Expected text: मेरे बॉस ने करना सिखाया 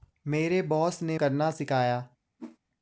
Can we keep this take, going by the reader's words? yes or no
yes